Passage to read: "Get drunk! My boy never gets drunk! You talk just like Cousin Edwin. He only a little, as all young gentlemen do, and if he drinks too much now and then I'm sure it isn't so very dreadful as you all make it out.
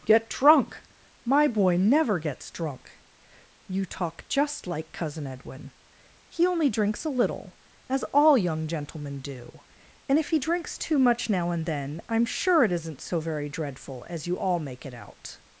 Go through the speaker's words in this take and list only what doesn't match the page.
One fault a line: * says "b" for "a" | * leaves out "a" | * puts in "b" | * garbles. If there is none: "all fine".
* puts in "drinks"